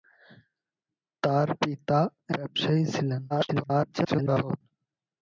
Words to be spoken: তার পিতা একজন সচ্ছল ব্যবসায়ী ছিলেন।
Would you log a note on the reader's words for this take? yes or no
yes